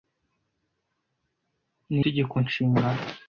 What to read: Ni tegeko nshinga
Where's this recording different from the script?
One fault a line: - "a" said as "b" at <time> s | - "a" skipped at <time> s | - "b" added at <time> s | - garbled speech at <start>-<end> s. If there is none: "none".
none